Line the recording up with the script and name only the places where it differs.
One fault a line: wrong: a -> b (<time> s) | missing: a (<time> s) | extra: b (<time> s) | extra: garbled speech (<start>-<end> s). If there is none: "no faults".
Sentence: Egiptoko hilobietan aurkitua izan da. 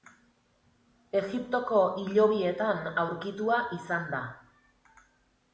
no faults